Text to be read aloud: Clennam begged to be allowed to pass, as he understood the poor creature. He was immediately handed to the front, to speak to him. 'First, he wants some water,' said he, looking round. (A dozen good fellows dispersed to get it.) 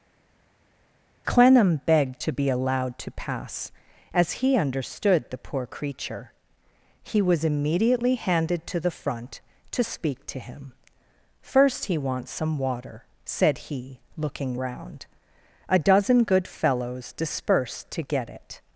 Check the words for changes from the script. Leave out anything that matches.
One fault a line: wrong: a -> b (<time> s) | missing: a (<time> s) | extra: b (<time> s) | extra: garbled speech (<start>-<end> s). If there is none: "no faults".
no faults